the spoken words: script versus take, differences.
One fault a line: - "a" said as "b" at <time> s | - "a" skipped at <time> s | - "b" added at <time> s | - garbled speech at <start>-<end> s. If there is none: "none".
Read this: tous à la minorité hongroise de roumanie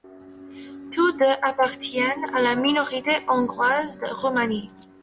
- "deux appartiennent" added at 1.1 s